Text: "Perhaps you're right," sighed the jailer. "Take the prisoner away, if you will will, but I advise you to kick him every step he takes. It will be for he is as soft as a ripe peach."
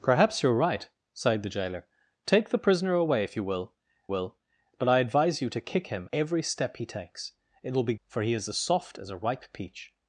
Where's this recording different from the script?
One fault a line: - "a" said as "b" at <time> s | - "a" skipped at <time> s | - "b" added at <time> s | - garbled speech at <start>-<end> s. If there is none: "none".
none